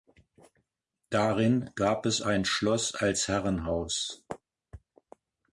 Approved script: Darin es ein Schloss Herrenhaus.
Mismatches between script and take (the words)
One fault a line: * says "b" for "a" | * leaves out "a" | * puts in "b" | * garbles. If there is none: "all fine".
* puts in "gab"
* puts in "als"